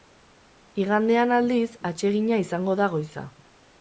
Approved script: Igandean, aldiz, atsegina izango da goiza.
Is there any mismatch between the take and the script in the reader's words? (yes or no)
no